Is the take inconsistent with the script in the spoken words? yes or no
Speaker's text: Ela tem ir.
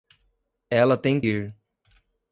no